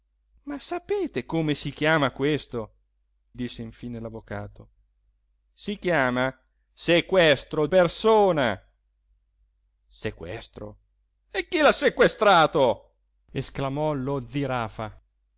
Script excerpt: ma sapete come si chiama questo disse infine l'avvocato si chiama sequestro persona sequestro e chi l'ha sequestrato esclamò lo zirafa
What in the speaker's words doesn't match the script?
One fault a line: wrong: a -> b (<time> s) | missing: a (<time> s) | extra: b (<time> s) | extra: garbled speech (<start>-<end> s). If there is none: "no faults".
no faults